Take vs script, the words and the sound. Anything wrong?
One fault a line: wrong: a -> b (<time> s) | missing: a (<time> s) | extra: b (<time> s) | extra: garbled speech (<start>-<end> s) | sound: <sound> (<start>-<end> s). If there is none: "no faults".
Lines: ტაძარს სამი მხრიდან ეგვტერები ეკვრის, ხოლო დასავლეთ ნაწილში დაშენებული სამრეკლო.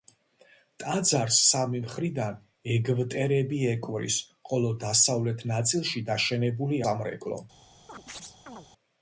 sound: chirp (7.9-8.7 s)